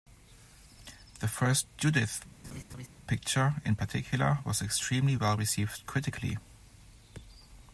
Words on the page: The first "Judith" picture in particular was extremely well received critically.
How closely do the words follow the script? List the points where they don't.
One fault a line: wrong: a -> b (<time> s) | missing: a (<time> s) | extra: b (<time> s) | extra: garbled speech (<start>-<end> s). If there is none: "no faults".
no faults